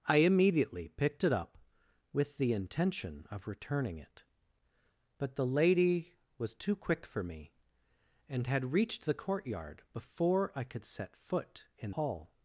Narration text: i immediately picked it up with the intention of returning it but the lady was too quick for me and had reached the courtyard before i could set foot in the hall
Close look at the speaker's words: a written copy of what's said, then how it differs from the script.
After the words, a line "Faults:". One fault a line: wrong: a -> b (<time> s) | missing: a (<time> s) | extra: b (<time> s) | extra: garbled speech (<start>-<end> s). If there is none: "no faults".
i immediately picked it up with the intention of returning it but the lady was too quick for me and had reached the courtyard before i could set foot in hall
Faults:
missing: the (11.9 s)